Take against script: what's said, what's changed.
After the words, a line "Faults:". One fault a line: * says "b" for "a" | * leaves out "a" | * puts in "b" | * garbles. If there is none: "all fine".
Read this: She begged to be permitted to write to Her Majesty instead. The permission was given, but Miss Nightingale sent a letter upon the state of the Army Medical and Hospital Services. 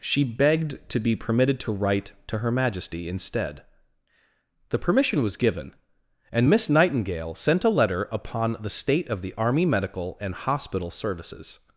She begged to be permitted to write to Her Majesty instead. The permission was given, and Miss Nightingale sent a letter upon the state of the Army Medical and Hospital Services.
Faults:
* says "and" for "but"